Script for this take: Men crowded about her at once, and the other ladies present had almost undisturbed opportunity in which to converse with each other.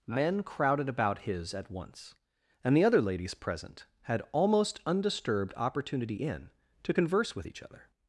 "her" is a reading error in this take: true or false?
true